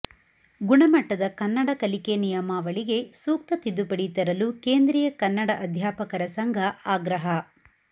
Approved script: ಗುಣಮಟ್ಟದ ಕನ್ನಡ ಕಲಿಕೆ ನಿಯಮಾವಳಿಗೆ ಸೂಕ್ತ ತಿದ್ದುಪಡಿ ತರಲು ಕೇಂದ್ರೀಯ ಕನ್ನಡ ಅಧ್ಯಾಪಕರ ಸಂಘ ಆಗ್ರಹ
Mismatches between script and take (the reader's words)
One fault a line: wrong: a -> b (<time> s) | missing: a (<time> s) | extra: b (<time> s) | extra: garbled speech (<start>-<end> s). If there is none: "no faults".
no faults